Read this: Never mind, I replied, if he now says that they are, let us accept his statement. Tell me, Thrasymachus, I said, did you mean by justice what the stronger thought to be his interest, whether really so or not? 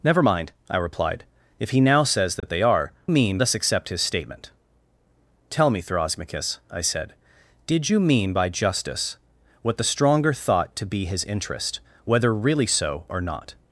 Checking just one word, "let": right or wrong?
wrong